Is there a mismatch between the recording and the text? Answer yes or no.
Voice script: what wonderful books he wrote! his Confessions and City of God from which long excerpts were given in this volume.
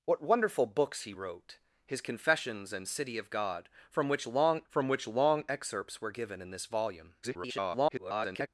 yes